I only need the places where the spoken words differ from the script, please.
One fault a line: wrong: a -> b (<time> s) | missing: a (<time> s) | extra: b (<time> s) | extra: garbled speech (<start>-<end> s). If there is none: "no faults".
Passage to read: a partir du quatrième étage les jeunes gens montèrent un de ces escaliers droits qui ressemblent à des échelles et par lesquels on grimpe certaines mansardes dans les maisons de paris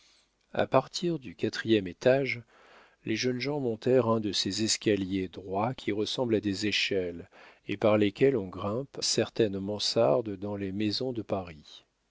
no faults